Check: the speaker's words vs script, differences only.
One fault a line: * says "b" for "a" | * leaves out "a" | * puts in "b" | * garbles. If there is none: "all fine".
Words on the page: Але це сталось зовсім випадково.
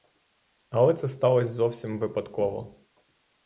all fine